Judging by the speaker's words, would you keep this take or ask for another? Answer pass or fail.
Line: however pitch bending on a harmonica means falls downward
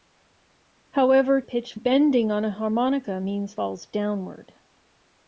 pass